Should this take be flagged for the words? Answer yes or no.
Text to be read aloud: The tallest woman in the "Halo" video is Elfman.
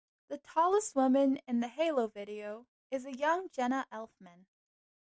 yes